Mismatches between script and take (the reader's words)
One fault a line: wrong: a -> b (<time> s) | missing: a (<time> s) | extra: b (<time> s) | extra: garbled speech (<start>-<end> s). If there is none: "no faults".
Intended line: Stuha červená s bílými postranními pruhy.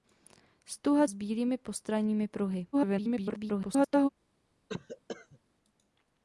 missing: červená (1.1 s)
extra: garbled speech (2.7-4.1 s)